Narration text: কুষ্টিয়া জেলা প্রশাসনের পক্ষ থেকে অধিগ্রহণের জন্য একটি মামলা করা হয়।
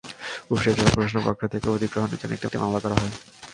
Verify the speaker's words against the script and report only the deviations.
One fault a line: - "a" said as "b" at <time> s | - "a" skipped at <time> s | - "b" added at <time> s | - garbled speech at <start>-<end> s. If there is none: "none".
- "একটি" added at 2.5 s